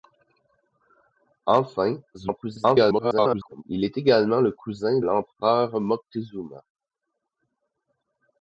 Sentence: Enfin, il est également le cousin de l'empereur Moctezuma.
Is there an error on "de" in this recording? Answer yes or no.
yes